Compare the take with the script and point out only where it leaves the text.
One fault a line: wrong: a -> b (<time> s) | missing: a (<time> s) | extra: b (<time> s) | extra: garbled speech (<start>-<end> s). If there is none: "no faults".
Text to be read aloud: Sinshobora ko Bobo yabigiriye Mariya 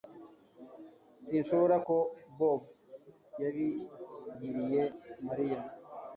no faults